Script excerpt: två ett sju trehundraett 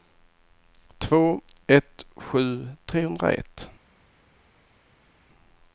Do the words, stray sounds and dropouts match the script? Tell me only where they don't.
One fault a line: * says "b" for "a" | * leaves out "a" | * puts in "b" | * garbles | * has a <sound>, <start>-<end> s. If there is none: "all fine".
all fine